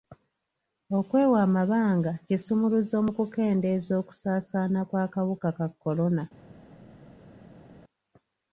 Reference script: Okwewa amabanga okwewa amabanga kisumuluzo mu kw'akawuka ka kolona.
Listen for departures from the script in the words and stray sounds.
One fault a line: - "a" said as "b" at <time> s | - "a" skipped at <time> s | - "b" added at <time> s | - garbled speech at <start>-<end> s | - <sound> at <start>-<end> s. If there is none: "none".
- "okwewa amabanga kisumuluzo mu" said as "kisumuluzo mu kukendeeza okusaasaana" at 2.3 s